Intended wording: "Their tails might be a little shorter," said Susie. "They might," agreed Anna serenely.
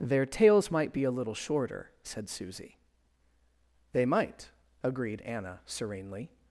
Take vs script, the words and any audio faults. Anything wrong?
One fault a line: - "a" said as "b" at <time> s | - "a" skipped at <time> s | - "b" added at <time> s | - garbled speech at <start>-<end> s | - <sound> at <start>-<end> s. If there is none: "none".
none